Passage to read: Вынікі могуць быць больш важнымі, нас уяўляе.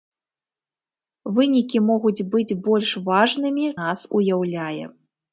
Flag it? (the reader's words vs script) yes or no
no